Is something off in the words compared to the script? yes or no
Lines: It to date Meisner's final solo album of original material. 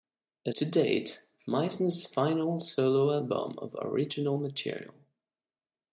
no